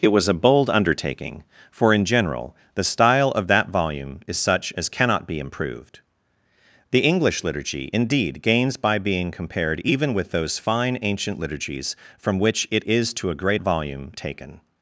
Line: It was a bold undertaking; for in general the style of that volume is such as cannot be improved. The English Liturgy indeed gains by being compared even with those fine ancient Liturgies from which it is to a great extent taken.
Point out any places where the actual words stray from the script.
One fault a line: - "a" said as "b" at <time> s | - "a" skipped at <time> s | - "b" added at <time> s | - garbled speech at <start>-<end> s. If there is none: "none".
- "extent" said as "volume" at 13.6 s